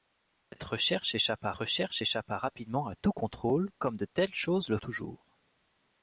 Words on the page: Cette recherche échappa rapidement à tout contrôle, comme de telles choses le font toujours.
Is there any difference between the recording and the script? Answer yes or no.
yes